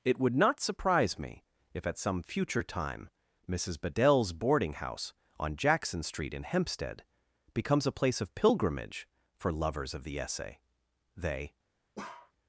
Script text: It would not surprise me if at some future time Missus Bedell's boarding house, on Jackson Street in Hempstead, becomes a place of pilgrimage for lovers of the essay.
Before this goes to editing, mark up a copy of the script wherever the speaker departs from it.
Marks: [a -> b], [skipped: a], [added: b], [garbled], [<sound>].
It would not surprise me if at some future time Missus Bedell's boarding house, on Jackson Street in Hempstead, becomes a place of pilgrimage for lovers of the essay. [added: They] [bark]